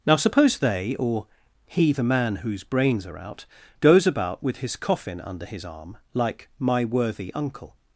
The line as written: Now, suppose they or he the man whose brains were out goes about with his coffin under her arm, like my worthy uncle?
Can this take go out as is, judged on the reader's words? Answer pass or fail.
fail